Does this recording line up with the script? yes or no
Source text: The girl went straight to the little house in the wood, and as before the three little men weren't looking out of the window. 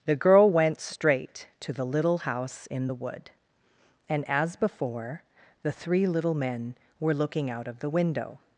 no